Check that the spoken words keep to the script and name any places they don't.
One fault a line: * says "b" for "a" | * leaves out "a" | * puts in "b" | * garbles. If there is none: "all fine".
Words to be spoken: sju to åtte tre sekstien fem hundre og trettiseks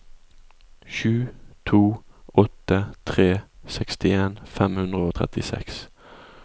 all fine